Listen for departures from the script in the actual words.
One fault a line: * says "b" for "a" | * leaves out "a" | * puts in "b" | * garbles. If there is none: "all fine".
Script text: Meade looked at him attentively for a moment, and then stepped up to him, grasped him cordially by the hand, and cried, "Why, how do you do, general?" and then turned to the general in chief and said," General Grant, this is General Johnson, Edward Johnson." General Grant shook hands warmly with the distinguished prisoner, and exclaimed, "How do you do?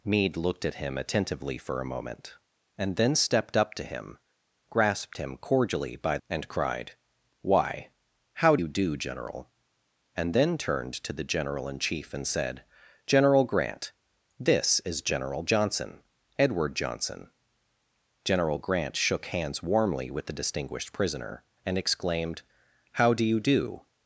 * leaves out "the hand"
* leaves out "do"